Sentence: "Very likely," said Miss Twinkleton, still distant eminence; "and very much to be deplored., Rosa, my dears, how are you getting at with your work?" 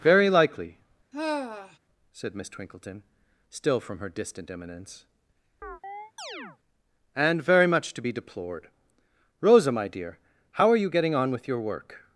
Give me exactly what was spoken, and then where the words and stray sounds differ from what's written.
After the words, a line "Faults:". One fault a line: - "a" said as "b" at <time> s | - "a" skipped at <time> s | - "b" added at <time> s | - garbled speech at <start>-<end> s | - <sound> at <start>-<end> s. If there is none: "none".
"Very likely," said Miss Twinkleton, still from her distant eminence; "and very much to be deplored., Rosa, my dear, how are you getting on with your work?"
Faults:
- sigh at 1.1-1.8 s
- "from her" added at 3.8 s
- chirp at 5.6-6.6 s
- "dears" said as "dear" at 9.9 s
- "at" said as "on" at 11.2 s